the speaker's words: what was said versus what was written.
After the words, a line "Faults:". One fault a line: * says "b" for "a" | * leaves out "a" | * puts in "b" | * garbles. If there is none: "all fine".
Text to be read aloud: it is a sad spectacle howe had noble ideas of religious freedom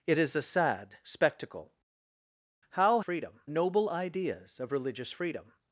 it is a sad spectacle howe freedom noble ideas of religious freedom
Faults:
* says "freedom" for "had"